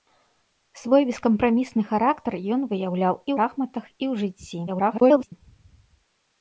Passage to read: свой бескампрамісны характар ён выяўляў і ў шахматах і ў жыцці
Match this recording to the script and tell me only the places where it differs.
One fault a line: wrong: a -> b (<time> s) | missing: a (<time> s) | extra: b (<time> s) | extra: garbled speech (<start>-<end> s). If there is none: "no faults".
missing: ў (3.3 s)
extra: garbled speech (4.7-5.3 s)